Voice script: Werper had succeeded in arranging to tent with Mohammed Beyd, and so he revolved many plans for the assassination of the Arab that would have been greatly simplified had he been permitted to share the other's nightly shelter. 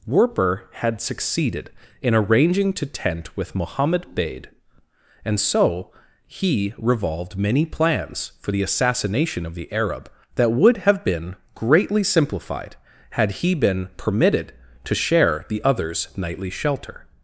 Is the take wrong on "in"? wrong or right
right